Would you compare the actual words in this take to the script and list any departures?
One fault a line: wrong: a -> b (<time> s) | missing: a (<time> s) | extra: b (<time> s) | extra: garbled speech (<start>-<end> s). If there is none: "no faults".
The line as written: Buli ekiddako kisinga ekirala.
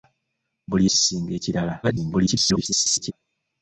missing: ekiddako (0.8 s)
extra: garbled speech (1.8-3.1 s)